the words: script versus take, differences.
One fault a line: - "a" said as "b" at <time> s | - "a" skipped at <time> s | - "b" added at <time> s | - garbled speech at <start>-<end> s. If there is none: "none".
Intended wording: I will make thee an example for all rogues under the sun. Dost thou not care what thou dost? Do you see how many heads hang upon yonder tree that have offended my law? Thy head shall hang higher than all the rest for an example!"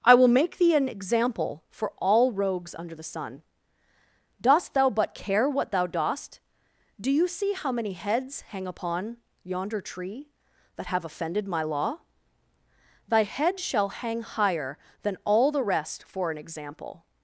- "not" said as "but" at 4.9 s